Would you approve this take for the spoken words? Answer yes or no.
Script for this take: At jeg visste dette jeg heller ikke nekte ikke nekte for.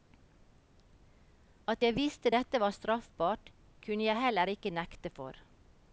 no